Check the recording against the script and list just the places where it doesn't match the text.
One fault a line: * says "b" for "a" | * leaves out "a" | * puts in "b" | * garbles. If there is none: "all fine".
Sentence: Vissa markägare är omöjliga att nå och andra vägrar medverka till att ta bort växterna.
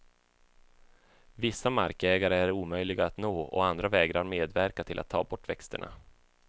all fine